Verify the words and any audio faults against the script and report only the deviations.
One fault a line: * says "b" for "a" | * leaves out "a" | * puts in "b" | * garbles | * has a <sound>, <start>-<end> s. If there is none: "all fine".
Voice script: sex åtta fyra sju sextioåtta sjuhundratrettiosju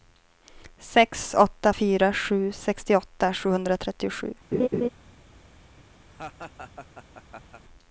* has a laugh, 4.5-4.9 s
* has a laugh, 6.1-7.6 s